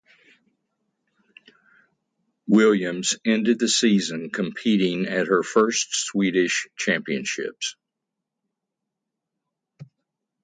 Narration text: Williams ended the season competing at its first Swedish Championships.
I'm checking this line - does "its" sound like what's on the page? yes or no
no